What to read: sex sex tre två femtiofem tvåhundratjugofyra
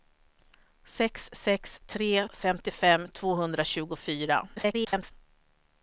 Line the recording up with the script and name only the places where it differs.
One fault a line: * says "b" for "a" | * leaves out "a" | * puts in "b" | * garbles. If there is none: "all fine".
* leaves out "två"
* garbles